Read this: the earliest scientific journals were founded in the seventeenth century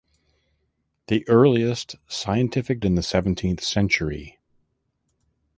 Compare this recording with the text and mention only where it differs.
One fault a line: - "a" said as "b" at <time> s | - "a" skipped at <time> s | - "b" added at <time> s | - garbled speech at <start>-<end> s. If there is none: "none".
- "journals were founded" skipped at 2.8 s